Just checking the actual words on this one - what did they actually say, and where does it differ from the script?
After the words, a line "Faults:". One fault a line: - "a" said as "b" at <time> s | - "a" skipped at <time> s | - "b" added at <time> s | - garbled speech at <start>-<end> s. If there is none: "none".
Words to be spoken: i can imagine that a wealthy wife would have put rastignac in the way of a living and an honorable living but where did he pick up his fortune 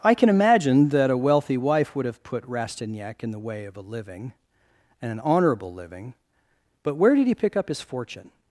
i can imagine that a wealthy wife would have put rastignac in the way of a living and an honorable living but where did he pick up his fortune
Faults:
none